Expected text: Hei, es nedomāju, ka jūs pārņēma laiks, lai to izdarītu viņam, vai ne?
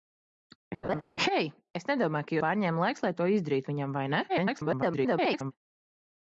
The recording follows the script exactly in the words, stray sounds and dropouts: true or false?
false